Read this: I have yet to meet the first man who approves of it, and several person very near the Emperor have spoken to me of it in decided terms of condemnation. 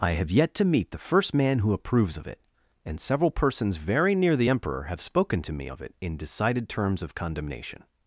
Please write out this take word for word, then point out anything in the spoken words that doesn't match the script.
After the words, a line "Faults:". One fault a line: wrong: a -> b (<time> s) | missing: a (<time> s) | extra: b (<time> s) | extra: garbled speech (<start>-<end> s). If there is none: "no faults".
I have yet to meet the first man who approves of it, and several persons very near the Emperor have spoken to me of it in decided terms of condemnation.
Faults:
wrong: person -> persons (3.3 s)